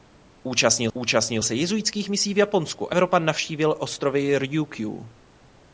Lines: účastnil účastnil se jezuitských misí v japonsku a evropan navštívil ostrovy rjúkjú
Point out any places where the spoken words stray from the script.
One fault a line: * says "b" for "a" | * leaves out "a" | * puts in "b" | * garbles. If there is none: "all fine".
all fine